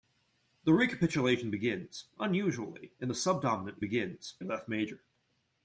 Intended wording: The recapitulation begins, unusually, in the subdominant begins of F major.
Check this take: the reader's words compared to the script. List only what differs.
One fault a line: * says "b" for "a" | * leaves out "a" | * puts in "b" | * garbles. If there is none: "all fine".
all fine